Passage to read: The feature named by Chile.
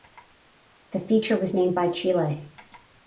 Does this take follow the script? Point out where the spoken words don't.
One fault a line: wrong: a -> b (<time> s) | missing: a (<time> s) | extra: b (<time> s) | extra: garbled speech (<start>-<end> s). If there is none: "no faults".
extra: was (1.4 s)